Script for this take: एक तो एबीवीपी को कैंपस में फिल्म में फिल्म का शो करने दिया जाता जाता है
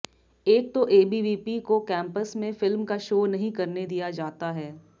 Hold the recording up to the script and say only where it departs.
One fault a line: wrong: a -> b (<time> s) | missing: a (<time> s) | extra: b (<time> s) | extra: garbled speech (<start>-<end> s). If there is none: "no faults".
missing: में फिल्म (2.9 s)
extra: नहीं (3.3 s)
missing: जाता (4.5 s)